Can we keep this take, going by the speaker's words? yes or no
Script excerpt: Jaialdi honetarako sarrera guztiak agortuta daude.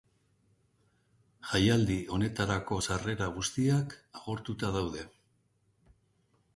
yes